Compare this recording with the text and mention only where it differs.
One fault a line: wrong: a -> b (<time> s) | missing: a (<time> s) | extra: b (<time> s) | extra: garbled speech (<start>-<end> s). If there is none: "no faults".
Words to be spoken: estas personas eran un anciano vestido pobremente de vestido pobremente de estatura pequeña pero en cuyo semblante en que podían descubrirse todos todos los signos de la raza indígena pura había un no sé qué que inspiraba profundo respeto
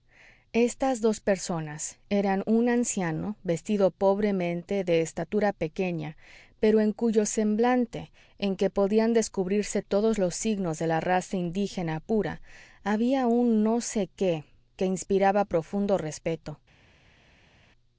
extra: dos (1.0 s)
missing: vestido pobremente de (5.0 s)
missing: todos (10.2 s)